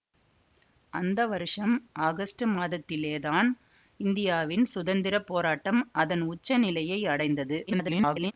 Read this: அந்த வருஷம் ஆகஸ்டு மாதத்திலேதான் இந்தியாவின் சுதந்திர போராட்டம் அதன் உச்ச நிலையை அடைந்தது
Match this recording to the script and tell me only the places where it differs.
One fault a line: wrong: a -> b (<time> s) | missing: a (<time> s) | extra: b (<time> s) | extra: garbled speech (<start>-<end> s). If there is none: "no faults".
extra: garbled speech (7.7-8.3 s)